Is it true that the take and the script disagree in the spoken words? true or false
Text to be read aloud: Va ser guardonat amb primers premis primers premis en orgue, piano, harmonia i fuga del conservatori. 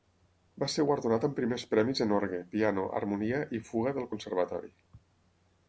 true